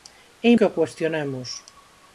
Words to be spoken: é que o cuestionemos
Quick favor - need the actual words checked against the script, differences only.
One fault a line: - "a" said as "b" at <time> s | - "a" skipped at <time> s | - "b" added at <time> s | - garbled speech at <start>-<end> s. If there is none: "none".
none